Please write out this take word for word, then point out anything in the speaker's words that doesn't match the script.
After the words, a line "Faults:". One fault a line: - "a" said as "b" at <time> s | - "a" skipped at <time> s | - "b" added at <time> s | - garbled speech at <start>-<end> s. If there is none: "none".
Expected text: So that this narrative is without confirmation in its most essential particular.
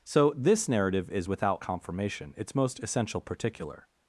So this narrative is without confirmation its most essential particular.
Faults:
- "that" skipped at 0.3 s
- "in" skipped at 2.3 s